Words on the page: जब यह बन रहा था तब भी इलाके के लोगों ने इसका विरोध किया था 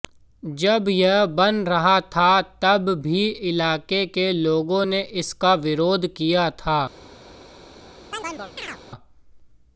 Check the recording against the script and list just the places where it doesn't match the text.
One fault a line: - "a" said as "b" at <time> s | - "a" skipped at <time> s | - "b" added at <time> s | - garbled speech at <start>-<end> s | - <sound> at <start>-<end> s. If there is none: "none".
- chirp at 8.1-8.8 s